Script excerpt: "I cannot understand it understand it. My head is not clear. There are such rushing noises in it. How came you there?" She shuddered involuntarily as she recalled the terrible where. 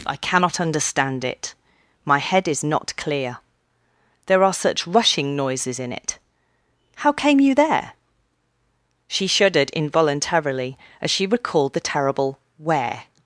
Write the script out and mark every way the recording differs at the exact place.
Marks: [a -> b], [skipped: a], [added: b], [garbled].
"I cannot understand it [skipped: understand it.] My head is not clear. There are such rushing noises in it. How came you there?" She shuddered involuntarily as she recalled the terrible where.